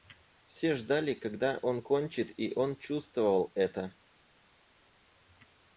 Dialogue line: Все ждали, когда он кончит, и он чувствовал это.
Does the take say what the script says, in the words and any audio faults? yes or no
yes